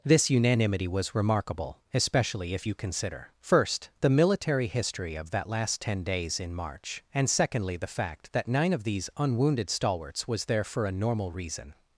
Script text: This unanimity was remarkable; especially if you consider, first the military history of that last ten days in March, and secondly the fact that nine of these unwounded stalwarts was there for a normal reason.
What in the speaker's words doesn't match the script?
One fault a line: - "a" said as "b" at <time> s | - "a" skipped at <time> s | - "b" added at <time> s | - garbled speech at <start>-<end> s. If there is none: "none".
none